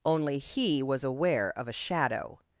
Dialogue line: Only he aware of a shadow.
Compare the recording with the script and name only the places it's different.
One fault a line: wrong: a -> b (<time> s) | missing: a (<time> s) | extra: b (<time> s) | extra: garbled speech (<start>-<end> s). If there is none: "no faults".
extra: was (0.8 s)